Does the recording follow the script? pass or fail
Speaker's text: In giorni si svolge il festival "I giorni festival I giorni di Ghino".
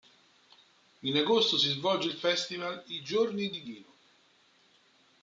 fail